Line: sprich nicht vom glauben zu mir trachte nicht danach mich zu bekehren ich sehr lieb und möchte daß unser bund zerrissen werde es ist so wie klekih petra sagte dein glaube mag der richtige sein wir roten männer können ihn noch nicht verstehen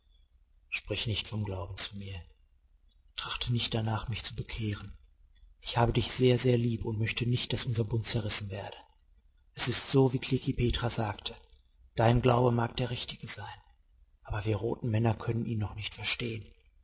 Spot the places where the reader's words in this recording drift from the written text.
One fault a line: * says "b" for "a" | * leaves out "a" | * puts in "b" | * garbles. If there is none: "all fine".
* puts in "habe dich"
* puts in "sehr"
* puts in "nicht"
* puts in "aber"